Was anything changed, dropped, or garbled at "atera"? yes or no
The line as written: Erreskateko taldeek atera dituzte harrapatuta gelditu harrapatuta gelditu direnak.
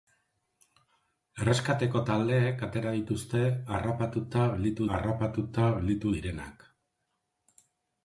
no